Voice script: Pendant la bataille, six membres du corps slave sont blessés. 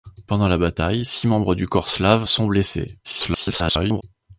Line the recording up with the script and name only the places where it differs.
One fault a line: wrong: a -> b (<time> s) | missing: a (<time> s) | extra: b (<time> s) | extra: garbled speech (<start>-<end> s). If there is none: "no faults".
extra: garbled speech (3.0-4.0 s)